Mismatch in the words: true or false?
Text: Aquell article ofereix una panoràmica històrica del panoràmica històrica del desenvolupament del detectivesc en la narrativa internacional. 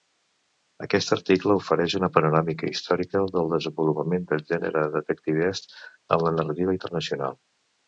true